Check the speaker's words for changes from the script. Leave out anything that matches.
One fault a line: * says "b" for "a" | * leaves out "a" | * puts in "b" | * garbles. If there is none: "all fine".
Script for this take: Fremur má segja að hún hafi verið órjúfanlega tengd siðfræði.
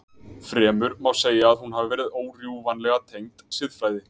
all fine